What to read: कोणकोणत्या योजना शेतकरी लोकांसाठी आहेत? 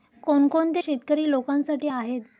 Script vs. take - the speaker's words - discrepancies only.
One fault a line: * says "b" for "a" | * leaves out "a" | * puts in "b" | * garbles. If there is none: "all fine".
* leaves out "योजना"